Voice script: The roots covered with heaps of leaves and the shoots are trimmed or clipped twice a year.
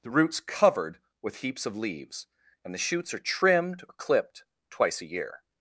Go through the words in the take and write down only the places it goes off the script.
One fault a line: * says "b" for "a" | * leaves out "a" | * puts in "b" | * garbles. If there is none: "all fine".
all fine